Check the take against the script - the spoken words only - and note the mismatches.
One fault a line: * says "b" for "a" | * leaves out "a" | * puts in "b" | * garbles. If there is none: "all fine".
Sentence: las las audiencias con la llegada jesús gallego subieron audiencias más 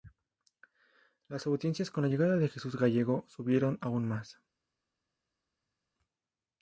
* leaves out "las"
* puts in "de"
* says "aún" for "audiencias"